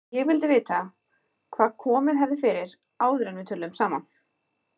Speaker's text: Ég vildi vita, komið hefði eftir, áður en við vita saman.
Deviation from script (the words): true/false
true